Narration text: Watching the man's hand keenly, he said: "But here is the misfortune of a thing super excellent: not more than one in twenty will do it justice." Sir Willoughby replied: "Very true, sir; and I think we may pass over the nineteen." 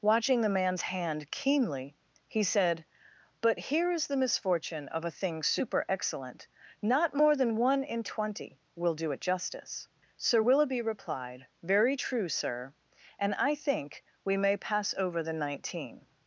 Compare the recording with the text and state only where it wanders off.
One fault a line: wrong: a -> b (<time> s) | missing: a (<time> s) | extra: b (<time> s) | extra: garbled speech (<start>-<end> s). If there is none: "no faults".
no faults